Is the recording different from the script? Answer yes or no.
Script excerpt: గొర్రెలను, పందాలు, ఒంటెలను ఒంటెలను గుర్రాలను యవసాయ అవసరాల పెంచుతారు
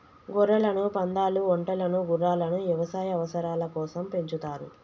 yes